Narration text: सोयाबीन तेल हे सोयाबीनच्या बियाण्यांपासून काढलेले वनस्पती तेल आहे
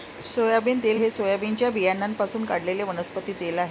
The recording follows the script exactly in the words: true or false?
true